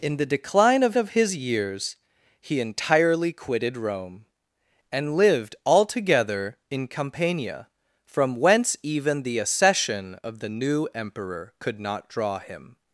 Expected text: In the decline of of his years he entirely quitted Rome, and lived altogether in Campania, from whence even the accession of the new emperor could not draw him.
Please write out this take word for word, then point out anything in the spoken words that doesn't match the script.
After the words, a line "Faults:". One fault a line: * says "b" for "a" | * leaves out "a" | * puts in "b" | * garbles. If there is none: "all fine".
In the decline of of his years he entirely quitted Rome, and lived altogether in Campania, from whence even the accession of the new emperor could not draw him.
Faults:
all fine